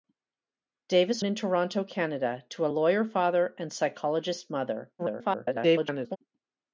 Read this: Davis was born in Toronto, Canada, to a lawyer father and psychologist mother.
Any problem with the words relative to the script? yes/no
yes